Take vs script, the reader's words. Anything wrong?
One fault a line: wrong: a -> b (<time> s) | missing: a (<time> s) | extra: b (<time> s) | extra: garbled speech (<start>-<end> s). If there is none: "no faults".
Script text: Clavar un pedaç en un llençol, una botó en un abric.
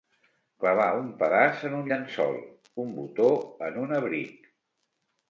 wrong: una -> un (2.8 s)